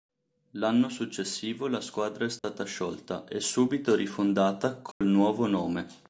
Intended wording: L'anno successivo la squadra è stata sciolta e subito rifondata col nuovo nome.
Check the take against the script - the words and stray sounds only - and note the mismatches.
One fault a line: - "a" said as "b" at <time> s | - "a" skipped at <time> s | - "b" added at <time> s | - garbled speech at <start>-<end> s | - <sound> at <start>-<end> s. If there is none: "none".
- dropout at 2.4-2.4 s
- dropout at 4.9-5.0 s